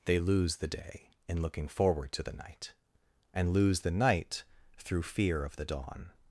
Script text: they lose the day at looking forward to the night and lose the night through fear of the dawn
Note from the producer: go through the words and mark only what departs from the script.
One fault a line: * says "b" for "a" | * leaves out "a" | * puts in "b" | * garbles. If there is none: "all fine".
* says "in" for "at"